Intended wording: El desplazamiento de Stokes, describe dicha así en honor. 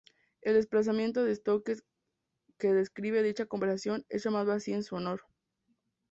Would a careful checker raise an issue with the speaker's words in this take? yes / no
yes